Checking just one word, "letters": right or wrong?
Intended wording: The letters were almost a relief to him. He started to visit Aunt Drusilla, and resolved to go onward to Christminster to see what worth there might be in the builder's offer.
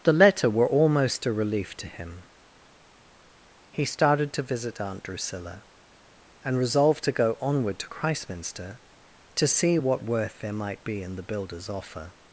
wrong